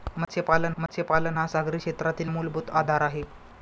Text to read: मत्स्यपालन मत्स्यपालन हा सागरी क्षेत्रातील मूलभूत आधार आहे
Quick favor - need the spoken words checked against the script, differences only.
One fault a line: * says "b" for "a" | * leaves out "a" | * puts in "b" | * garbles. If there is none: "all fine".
all fine